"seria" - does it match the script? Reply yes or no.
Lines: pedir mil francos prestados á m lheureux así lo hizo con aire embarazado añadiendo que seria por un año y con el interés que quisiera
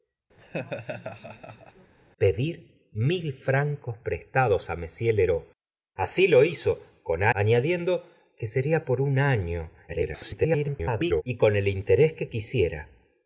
yes